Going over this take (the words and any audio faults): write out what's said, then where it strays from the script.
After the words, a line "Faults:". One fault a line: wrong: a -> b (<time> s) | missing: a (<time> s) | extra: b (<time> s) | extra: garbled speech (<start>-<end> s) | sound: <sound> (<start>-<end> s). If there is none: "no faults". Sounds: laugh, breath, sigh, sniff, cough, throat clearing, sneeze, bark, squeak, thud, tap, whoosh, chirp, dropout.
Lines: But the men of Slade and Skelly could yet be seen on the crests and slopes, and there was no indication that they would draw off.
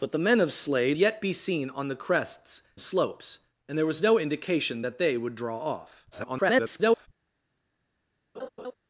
But the men of Slade yet be seen on the crests slopes, and there was no indication that they would draw off. [garbled]
Faults:
missing: and Skelly could (1.0 s)
missing: and (2.6 s)
extra: garbled speech (6.1-7.1 s)
sound: laugh (8.3-8.7 s)